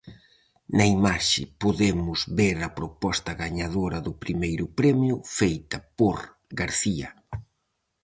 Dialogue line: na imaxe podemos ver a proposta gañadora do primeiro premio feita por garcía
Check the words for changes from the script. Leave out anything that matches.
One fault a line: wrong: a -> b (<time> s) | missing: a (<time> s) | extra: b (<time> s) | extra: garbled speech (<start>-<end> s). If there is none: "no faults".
no faults